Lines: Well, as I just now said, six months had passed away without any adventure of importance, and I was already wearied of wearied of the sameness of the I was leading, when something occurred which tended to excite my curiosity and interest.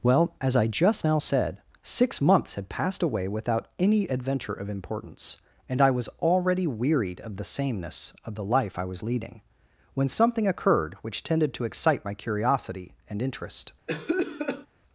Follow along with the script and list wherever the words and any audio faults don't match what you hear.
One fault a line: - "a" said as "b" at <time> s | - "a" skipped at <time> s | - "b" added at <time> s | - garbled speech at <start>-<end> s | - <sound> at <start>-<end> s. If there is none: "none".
- "wearied of" skipped at 7.4 s
- "life" added at 8.4 s
- cough at 13.9-14.7 s